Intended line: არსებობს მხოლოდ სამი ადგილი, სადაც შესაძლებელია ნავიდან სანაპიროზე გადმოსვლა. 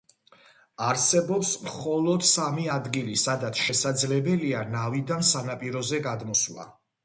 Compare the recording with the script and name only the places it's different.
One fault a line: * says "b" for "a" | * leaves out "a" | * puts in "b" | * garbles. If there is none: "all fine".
all fine